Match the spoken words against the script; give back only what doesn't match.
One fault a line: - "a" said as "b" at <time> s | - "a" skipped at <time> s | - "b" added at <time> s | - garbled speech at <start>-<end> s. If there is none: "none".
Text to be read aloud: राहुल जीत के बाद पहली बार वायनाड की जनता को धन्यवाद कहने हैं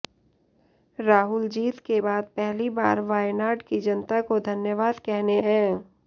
none